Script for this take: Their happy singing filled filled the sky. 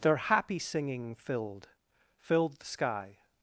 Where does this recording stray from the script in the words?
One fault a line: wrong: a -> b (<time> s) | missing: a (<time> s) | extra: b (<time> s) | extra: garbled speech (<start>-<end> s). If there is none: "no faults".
no faults